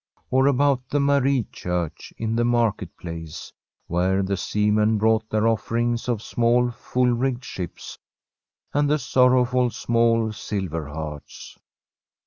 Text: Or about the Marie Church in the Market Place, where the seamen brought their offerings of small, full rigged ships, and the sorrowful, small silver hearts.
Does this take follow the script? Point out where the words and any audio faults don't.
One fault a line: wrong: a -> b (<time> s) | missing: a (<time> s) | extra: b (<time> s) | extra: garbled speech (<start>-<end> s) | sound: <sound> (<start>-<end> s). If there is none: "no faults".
no faults